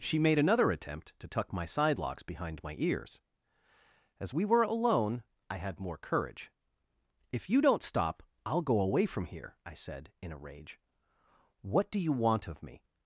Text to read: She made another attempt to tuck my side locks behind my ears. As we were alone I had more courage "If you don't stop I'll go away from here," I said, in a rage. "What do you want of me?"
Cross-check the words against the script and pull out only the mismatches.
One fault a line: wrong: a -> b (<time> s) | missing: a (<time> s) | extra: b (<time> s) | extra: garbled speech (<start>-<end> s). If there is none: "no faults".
no faults